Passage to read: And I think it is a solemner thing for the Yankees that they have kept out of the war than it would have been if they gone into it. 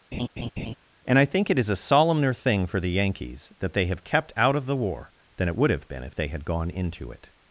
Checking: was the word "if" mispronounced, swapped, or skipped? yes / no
no